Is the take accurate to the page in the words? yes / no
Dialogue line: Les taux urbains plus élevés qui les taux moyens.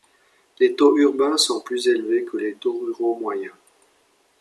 no